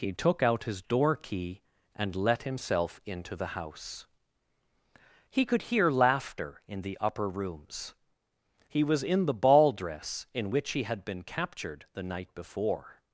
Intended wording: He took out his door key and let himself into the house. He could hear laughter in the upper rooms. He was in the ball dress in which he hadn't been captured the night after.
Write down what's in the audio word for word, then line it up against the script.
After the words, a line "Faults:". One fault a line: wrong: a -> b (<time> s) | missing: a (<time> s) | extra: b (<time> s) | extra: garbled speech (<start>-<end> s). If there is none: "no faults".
He took out his door key and let himself into the house. He could hear laughter in the upper rooms. He was in the ball dress in which he had been captured the night before.
Faults:
wrong: hadn't -> had (10.8 s)
wrong: after -> before (12.3 s)